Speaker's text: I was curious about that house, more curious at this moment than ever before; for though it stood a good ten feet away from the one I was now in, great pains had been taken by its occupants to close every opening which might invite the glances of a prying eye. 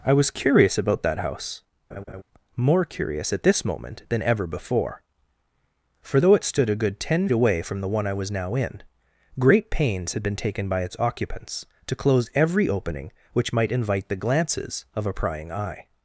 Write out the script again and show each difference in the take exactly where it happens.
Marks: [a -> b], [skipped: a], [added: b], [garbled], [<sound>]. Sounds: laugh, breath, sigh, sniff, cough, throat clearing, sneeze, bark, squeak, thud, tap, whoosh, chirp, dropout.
I was curious about that house, [laugh] more curious at this moment than ever before; for though it stood a good ten [skipped: feet] away from the one I was now in, great pains had been taken by its occupants to close every opening which might invite the glances of a prying eye.